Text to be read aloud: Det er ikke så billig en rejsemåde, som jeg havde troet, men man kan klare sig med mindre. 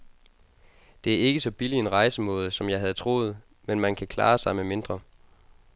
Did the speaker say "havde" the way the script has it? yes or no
yes